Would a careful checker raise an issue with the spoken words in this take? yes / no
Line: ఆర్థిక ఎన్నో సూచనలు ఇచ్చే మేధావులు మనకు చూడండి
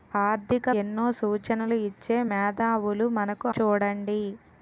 no